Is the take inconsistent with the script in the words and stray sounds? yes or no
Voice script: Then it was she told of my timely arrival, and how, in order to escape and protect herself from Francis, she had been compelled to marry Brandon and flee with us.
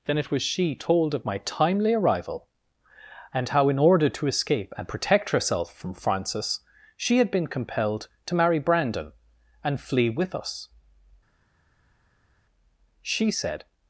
yes